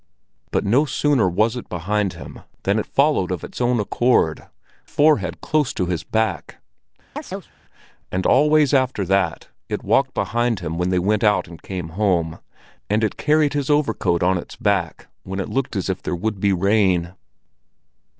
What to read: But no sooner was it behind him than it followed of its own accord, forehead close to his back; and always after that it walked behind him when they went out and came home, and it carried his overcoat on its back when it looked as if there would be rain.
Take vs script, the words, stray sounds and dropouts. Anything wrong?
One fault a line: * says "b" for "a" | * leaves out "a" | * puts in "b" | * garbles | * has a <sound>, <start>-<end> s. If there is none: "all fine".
* has a chirp, 7.2-7.5 s